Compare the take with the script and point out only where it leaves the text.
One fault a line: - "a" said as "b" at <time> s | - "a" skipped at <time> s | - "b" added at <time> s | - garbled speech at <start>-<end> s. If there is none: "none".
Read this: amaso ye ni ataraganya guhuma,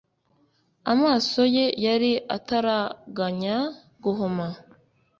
- "ni" said as "yari" at 1.9 s